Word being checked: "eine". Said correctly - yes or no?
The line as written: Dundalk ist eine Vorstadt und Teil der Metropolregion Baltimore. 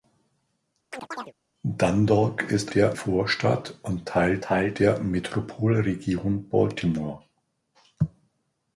no